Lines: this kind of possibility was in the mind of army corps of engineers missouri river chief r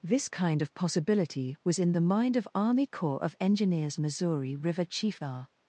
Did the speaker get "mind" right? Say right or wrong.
right